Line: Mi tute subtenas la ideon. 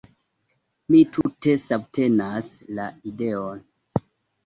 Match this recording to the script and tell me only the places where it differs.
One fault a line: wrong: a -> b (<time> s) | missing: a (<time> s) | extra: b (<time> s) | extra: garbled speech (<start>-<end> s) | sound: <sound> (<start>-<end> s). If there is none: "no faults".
sound: dropout (1.2-1.3 s)